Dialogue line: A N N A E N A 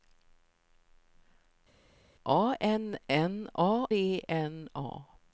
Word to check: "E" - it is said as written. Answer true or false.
true